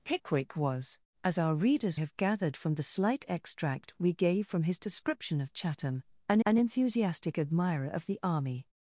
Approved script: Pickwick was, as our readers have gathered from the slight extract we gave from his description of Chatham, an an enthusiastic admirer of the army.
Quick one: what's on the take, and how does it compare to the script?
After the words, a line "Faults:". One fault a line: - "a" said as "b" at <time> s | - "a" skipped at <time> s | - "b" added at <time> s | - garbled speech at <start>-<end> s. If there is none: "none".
Pickwick was, as our readers have gathered from the slight extract we gave from his description of Chatham, an an enthusiastic admirer of the army.
Faults:
none